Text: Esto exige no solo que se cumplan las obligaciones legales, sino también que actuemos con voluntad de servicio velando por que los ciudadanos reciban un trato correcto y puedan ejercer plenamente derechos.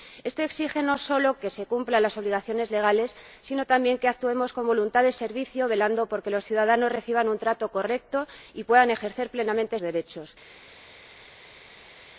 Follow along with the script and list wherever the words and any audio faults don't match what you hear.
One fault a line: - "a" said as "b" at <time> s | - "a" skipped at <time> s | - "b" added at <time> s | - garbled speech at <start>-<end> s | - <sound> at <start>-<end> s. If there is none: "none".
none